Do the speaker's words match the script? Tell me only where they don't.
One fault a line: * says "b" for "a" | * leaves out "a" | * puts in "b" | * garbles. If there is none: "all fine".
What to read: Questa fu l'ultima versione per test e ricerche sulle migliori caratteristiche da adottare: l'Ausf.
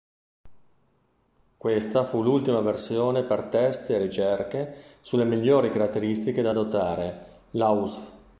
all fine